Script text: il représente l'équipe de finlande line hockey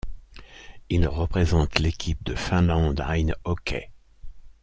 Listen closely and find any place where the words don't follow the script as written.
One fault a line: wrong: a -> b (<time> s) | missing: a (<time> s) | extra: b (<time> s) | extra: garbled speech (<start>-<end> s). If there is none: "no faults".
no faults